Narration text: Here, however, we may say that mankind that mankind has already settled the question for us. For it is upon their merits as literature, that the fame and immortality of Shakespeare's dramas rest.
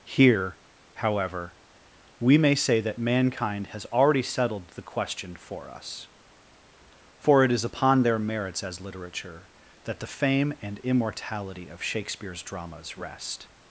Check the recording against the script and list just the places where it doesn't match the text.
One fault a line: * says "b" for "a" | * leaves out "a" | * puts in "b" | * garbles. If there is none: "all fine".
* leaves out "that mankind"